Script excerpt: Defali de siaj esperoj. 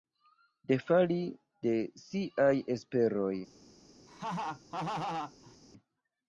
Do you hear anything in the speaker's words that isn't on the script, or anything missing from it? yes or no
no